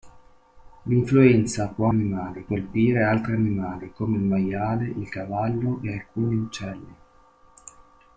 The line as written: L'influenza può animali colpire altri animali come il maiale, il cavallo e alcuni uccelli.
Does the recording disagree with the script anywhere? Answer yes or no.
no